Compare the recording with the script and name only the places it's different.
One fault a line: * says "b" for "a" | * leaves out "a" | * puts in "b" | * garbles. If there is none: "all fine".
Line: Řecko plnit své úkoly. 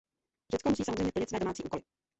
* puts in "musí samozřejmě"
* puts in "domácí"